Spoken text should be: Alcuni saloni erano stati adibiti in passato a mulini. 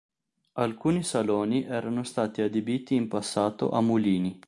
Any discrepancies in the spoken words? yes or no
no